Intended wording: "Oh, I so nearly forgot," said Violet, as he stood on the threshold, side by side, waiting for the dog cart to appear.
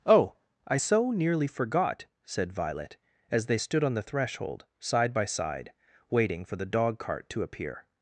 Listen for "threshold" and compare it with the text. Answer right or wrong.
right